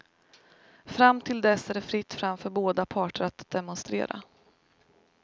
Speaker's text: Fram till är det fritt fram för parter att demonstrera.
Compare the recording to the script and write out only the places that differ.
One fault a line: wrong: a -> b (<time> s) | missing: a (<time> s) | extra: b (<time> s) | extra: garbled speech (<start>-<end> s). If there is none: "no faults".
extra: dess (1.4 s)
extra: båda (2.5 s)